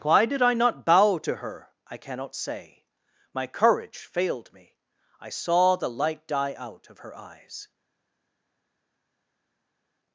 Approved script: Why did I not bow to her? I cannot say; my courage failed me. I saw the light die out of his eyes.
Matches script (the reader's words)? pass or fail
fail